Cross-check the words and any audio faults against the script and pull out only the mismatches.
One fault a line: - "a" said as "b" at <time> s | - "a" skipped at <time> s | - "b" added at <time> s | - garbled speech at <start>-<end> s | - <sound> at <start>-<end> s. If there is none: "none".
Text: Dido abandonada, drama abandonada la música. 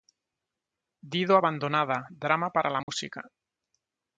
- "abandonada" said as "para" at 2.5 s
- dropout at 2.8-2.9 s